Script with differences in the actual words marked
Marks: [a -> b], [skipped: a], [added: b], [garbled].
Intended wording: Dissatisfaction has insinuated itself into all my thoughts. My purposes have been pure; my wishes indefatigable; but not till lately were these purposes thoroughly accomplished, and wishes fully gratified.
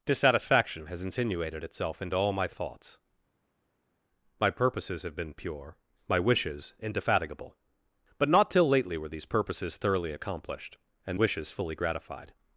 Dissatisfaction has insinuated itself into all my thoughts. My purposes have been pure; my wishes indefatigable; but not till lately were these purposes thoroughly accomplished, and wishes fully gratified.